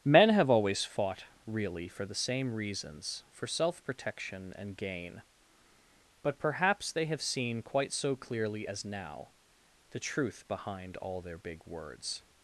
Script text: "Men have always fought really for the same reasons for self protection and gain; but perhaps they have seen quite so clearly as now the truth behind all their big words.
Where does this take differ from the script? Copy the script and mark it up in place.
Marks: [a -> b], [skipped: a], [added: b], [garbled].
"Men have always fought really for the same reasons for self protection and gain; but perhaps they have seen quite so clearly as now the truth behind all their big words.